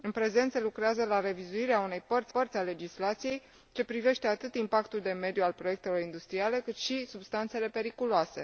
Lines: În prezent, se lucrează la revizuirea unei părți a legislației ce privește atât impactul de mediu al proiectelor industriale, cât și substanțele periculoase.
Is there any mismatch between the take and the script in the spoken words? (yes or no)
yes